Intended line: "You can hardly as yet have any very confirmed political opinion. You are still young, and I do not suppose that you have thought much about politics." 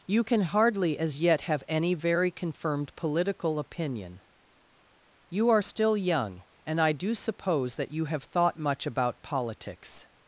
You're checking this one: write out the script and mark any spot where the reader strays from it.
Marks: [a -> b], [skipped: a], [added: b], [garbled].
"You can hardly as yet have any very confirmed political opinion. You are still young, and I do [skipped: not] suppose that you have thought much about politics."